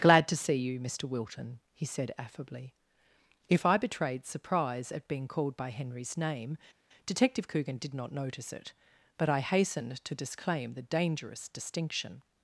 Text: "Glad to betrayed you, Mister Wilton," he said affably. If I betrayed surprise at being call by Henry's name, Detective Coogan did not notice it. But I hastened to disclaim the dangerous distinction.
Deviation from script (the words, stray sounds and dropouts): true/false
true